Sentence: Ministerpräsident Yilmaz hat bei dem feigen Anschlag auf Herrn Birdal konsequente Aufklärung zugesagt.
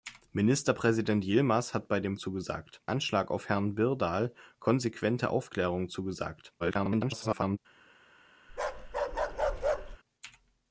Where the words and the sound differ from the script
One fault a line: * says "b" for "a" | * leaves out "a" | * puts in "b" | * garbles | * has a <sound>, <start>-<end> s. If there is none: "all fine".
* says "zugesagt" for "feigen"
* garbles
* has a bark, 8.5-10.0 s